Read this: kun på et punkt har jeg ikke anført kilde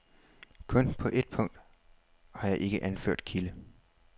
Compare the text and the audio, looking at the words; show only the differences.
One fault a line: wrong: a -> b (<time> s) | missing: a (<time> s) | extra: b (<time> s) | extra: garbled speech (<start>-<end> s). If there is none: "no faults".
no faults